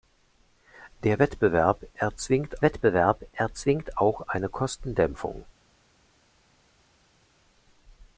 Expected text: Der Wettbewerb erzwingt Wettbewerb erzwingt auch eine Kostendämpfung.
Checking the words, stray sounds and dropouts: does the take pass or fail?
pass